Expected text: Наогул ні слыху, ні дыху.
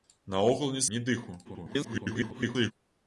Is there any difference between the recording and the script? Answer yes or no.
yes